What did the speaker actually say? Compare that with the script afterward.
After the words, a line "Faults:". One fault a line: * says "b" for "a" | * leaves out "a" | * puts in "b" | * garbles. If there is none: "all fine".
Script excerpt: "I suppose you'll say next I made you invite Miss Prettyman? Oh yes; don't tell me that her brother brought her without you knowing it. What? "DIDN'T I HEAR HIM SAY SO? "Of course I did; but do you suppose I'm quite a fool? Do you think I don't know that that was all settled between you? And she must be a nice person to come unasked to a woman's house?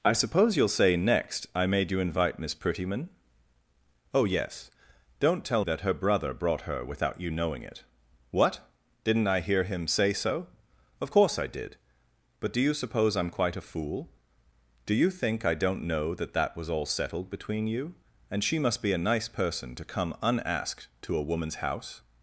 "I suppose you'll say next I made you invite Miss Prettyman? Oh yes; don't tell that her brother brought her without you knowing it. What? "DIDN'T I HEAR HIM SAY SO? "Of course I did; but do you suppose I'm quite a fool? Do you think I don't know that that was all settled between you? And she must be a nice person to come unasked to a woman's house?
Faults:
* leaves out "me"